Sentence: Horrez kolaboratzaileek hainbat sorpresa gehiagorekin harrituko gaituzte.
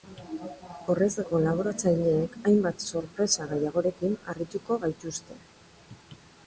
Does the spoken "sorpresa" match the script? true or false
true